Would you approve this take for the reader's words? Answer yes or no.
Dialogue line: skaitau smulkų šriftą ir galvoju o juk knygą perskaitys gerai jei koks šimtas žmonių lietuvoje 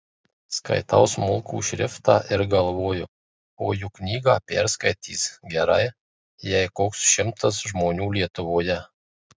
yes